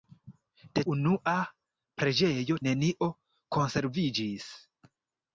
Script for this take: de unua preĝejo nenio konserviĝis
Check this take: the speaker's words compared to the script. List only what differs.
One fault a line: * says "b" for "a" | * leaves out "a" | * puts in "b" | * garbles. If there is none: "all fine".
all fine